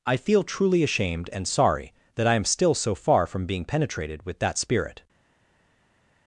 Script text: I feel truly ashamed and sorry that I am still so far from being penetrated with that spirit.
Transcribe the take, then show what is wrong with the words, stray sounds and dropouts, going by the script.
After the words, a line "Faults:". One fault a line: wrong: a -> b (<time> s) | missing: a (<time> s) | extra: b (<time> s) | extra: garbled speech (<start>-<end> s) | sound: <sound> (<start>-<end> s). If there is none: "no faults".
I feel truly ashamed and sorry that I am still so far from being penetrated with that spirit.
Faults:
no faults